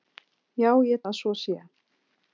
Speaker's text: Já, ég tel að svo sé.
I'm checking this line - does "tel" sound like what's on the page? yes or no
no